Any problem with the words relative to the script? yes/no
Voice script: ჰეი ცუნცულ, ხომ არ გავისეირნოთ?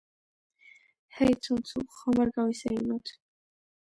no